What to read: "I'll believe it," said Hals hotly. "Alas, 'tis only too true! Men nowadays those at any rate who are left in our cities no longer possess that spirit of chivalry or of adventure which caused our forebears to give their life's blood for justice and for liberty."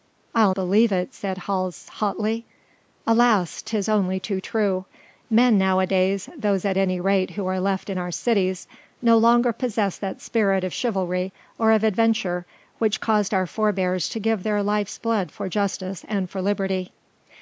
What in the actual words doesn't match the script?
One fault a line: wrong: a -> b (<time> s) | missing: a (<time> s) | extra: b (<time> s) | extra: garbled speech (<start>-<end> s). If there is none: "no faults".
no faults